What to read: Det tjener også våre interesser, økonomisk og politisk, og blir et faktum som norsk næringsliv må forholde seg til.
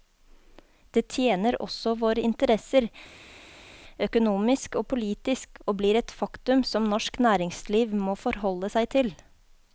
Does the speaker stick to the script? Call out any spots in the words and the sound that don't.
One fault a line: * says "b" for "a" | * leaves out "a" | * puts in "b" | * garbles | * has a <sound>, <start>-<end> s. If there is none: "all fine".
all fine